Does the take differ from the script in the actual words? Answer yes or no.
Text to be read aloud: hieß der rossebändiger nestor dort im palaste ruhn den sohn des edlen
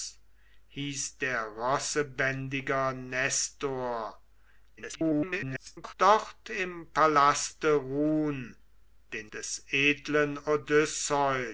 yes